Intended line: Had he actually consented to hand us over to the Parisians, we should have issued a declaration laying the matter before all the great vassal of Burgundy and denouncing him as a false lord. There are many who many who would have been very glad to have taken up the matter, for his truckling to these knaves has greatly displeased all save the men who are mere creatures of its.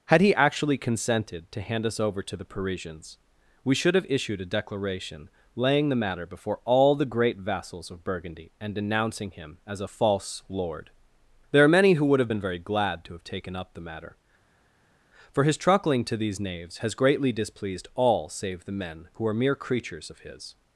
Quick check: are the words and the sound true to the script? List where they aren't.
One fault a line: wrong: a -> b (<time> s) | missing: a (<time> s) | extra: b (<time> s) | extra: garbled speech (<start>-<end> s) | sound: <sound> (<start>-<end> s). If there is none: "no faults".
wrong: vassal -> vassals (7.4 s)
missing: many who (12.0 s)
wrong: its -> his (20.2 s)